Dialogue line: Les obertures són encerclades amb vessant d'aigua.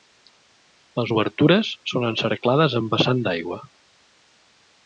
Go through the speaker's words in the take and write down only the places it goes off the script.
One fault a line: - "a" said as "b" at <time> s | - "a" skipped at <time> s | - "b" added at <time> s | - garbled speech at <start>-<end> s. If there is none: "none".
none